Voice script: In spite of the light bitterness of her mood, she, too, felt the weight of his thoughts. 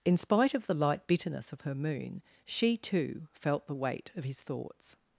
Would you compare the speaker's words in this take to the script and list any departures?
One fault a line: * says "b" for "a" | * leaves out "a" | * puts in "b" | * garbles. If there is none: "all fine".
* says "moon" for "mood"